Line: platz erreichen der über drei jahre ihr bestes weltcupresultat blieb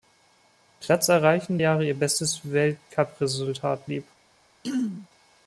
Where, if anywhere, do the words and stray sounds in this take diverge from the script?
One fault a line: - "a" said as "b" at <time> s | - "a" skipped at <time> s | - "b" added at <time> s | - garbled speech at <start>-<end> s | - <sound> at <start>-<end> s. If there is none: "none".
- "der über drei" skipped at 1.6 s
- throat clearing at 4.6-5.1 s